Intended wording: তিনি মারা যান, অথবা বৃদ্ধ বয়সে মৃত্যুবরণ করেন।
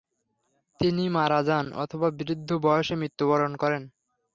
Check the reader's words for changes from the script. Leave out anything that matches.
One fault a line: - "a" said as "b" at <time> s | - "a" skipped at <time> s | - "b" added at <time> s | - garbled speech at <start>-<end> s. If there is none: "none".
none